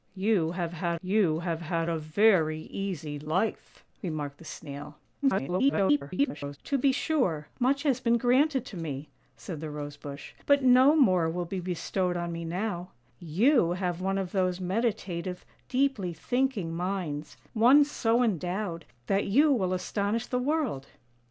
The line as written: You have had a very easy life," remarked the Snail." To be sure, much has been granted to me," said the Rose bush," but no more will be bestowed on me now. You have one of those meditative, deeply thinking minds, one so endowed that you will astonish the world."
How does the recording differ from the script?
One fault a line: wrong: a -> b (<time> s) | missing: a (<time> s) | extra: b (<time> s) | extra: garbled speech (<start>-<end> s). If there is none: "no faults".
extra: you have had (1.0 s)
extra: garbled speech (5.2-6.6 s)